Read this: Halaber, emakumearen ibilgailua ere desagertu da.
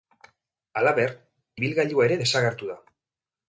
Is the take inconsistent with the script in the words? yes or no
yes